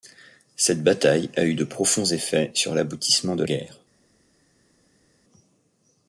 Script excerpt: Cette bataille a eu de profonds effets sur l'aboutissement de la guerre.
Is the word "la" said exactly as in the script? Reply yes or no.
no